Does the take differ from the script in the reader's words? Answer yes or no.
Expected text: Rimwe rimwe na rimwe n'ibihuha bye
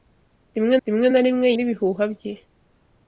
no